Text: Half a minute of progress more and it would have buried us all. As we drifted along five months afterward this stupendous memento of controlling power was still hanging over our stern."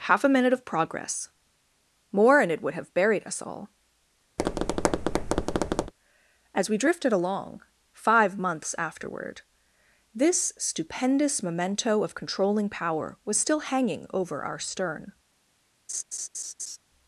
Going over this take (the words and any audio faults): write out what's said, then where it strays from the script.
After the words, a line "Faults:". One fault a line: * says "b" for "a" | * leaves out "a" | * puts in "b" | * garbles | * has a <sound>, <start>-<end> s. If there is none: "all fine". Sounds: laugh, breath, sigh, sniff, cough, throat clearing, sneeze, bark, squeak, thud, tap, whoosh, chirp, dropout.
Half a minute of progress more and it would have buried us all. As we drifted along five months afterward this stupendous memento of controlling power was still hanging over our stern."
Faults:
* has a tap, 4.4-5.9 s
* has a laugh, 15.9-16.8 s